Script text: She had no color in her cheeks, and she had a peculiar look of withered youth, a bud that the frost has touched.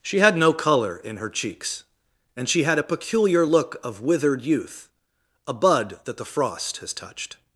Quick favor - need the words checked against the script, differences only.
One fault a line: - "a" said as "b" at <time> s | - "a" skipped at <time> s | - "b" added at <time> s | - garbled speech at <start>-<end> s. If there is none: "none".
none